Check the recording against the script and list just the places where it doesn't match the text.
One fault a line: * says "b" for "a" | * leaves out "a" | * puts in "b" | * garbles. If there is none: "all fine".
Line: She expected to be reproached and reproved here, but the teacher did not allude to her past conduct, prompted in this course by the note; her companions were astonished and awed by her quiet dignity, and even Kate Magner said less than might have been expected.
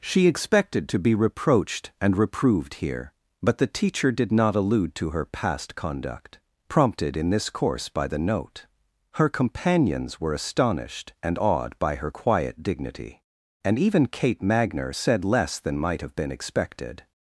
all fine